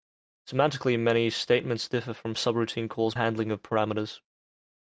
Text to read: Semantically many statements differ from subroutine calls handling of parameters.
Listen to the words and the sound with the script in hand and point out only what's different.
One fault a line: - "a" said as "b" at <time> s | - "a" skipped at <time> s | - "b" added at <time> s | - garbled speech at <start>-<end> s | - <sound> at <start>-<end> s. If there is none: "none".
none